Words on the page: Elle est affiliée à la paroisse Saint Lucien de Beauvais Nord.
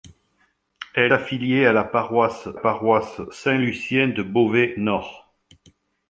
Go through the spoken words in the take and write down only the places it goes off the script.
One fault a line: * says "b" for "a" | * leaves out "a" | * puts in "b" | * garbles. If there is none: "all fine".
* leaves out "est"
* puts in "paroisse"